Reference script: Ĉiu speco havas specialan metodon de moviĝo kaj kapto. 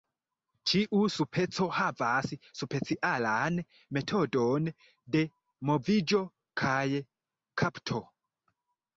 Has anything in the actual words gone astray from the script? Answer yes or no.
no